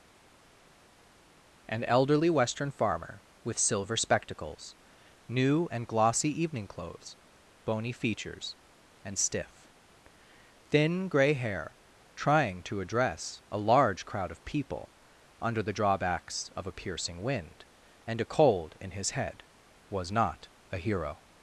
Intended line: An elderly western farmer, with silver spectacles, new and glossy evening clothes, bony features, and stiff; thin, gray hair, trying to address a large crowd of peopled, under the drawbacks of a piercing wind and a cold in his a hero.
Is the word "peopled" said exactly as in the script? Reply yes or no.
no